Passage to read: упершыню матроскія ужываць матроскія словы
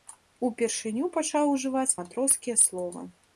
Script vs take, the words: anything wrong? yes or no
yes